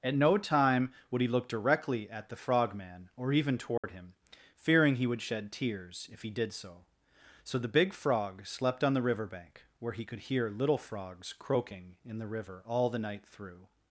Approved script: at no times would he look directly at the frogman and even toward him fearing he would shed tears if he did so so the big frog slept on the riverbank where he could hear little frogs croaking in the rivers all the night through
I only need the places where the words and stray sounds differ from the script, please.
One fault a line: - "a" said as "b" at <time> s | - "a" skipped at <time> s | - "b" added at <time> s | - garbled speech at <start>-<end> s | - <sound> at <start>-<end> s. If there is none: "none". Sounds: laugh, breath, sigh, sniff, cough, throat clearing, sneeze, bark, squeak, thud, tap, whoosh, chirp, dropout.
- "times" said as "time" at 0.4 s
- "and" said as "or" at 3.1 s
- dropout at 3.8-3.8 s
- "rivers" said as "river" at 12.2 s